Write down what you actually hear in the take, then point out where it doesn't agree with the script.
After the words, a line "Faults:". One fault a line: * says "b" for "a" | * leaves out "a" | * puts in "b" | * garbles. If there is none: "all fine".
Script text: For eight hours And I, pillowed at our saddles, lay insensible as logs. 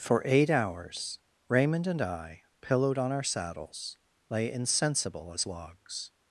For eight hours Raymond and I, pillowed on our saddles, lay insensible as logs.
Faults:
* puts in "Raymond"
* says "on" for "at"